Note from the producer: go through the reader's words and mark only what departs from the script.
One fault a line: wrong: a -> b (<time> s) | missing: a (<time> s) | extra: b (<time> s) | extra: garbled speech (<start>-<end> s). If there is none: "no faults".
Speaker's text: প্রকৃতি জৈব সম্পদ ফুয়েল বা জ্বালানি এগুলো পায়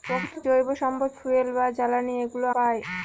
no faults